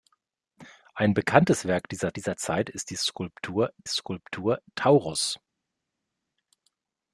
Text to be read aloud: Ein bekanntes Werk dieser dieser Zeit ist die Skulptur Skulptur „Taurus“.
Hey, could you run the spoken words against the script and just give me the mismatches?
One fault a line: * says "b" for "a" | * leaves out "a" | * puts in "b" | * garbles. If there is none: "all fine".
all fine